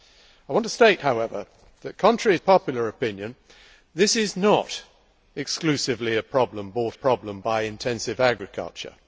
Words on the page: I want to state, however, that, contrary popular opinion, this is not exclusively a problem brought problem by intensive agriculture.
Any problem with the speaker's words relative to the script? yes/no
no